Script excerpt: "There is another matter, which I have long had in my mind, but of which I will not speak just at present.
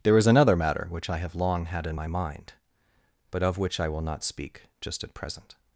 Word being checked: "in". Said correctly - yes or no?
yes